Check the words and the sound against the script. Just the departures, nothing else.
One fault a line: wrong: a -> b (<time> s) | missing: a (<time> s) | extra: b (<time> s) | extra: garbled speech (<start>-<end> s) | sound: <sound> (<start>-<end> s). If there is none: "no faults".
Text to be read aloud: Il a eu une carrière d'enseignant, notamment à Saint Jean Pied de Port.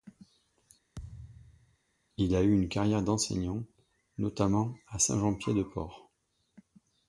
sound: thud (0.9-1.8 s)